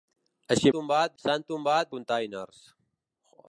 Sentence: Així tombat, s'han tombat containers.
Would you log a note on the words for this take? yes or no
no